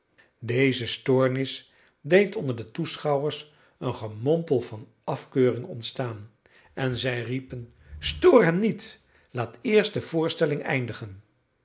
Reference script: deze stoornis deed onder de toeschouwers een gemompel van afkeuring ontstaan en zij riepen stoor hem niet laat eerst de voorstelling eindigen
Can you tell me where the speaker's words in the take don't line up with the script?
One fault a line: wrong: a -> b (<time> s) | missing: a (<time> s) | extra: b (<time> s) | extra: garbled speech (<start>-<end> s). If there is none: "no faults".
no faults